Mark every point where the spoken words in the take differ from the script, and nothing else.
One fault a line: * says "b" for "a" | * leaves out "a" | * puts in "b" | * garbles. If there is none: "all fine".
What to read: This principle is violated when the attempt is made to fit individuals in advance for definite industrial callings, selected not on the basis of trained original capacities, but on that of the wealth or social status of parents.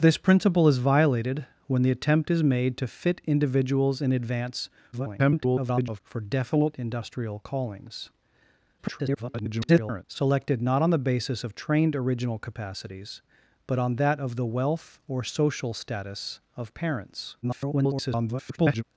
* garbles
* garbles
* garbles